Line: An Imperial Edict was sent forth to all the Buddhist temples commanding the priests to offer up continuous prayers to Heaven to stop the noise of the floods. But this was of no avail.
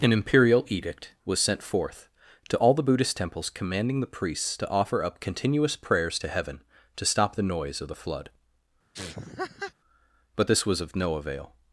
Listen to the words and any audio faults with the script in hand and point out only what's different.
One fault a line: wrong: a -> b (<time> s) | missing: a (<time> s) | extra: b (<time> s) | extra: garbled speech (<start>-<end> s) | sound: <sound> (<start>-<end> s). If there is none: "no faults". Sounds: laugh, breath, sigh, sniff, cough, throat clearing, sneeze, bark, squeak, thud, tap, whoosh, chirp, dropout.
wrong: floods -> flood (7.9 s)
sound: laugh (8.9-9.7 s)